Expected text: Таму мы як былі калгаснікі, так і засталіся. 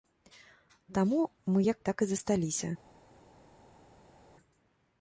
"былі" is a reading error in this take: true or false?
true